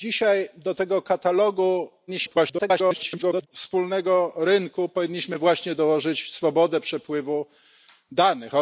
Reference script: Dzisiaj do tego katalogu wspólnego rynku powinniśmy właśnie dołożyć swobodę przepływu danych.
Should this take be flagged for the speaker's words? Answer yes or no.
yes